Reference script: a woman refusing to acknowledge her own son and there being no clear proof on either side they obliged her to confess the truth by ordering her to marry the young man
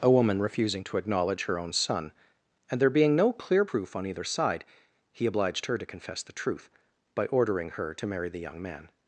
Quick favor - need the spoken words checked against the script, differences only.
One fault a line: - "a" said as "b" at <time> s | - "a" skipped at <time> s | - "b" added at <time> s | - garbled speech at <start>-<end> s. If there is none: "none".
- "they" said as "he" at 5.1 s